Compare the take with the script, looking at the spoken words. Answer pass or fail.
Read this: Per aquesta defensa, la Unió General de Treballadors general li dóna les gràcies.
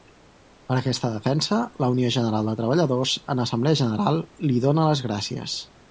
fail